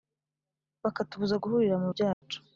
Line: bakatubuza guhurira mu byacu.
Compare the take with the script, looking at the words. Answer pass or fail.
pass